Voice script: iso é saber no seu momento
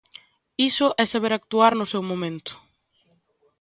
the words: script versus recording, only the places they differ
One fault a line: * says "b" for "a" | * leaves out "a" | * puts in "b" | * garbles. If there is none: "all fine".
* puts in "actuar"